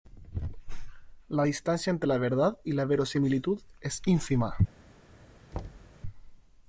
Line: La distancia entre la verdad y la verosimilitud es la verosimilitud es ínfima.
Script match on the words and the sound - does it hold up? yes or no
no